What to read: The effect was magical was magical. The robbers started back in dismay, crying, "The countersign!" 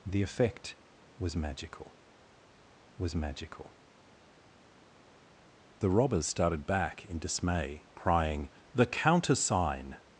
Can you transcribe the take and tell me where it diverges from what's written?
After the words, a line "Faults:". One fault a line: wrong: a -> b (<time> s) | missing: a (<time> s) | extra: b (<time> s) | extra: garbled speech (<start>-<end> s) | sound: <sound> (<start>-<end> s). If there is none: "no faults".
The effect was magical was magical. The robbers started back in dismay, crying, "The countersign!"
Faults:
no faults